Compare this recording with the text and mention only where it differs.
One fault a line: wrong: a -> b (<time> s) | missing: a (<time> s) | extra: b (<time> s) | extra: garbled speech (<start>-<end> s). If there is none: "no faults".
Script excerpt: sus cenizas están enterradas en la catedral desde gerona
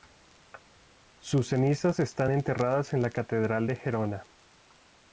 wrong: desde -> de (3.7 s)